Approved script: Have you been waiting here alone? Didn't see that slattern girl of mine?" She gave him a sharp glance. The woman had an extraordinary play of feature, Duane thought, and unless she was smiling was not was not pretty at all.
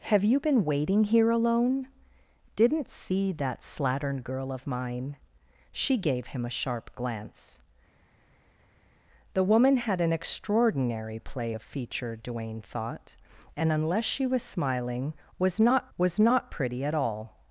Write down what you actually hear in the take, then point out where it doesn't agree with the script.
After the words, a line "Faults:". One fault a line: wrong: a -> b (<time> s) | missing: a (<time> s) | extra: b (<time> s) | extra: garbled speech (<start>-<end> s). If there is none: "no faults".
Have you been waiting here alone? Didn't see that slattern girl of mine?" She gave him a sharp glance. The woman had an extraordinary play of feature, Duane thought, and unless she was smiling was not was not pretty at all.
Faults:
no faults